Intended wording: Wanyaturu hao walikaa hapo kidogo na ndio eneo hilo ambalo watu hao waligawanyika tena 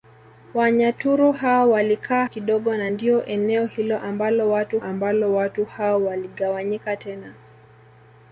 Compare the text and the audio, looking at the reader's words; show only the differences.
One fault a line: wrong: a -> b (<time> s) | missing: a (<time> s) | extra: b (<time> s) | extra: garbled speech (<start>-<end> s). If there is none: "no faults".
missing: hapo (2.2 s)
extra: ambalo watu (4.8 s)